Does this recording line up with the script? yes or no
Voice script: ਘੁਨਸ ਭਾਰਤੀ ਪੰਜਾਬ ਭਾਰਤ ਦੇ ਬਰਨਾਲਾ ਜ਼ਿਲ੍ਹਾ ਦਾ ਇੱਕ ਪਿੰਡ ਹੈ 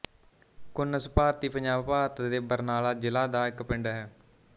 yes